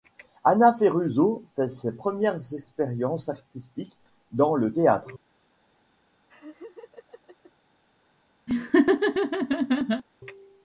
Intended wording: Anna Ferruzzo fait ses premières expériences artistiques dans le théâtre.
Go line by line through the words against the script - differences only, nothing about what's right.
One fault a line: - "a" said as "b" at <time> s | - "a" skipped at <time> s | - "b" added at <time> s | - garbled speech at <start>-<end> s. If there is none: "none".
none